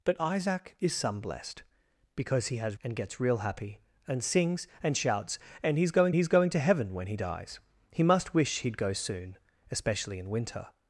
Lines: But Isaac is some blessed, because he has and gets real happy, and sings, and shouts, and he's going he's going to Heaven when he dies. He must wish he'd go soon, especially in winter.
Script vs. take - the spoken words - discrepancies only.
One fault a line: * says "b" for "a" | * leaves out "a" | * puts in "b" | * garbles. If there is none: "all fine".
all fine